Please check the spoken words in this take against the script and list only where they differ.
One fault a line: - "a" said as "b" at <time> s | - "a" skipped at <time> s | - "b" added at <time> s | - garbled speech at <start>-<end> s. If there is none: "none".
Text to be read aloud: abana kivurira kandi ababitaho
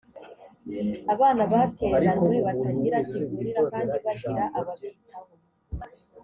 - "batereranywe batagira" added at 1.5 s
- "bagira" added at 4.0 s